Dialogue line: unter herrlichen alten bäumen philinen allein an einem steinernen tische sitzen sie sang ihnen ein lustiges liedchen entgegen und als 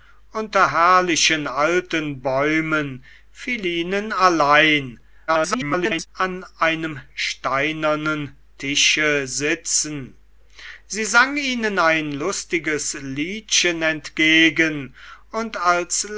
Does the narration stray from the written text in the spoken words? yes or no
yes